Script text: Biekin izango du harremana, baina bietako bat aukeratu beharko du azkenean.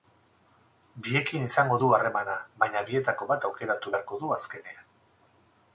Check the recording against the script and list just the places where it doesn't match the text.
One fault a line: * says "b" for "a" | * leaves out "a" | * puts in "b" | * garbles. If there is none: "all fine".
all fine